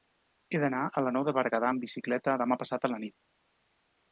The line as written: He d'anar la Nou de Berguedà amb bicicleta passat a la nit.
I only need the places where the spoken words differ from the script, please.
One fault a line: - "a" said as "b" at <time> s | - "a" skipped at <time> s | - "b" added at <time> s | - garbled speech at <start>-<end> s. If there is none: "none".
- "a" added at 0.8 s
- "demà" added at 2.4 s